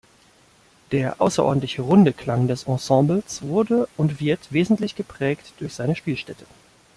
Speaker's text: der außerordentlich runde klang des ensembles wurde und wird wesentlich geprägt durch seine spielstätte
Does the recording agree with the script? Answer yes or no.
yes